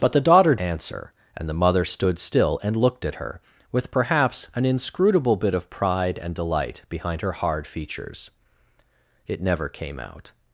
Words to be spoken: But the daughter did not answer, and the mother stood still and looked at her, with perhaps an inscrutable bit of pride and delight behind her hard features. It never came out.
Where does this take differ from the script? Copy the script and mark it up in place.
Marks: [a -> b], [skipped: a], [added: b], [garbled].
But the daughter [skipped: did not] answer, and the mother stood still and looked at her, with perhaps an inscrutable bit of pride and delight behind her hard features. It never came out.